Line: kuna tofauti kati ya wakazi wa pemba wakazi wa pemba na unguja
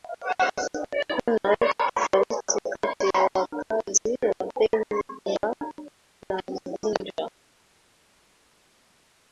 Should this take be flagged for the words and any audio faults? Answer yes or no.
yes